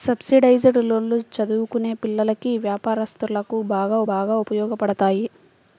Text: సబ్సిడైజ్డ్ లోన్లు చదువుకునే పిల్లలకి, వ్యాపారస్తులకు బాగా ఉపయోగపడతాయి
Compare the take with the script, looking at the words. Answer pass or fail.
fail